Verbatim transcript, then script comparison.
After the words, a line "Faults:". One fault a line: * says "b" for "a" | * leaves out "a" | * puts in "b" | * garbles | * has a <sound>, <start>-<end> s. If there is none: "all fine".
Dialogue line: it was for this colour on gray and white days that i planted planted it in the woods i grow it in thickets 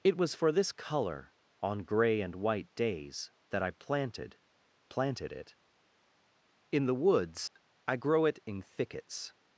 it was for this colour on gray and white days that i planted planted it in the woods i grow it in thickets
Faults:
* has a dropout, 7.5-7.6 s